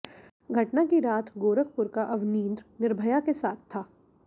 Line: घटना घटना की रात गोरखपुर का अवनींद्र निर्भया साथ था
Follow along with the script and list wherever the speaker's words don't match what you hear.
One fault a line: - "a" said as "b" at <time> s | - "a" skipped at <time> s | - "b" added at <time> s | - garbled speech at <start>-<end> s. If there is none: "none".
- "घटना" skipped at 0.8 s
- "के" added at 3.2 s